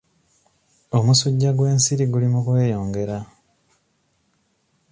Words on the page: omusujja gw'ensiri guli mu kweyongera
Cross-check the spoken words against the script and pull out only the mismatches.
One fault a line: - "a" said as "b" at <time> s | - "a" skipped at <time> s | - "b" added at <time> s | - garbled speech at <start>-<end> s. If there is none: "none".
none